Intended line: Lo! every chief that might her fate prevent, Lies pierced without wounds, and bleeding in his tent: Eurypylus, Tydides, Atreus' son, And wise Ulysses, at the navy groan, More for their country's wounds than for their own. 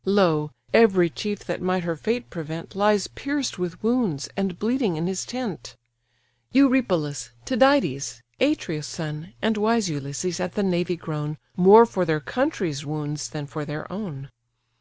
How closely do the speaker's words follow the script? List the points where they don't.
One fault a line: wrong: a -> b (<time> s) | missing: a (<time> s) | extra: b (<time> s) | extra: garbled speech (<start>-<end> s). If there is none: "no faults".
wrong: without -> with (3.6 s)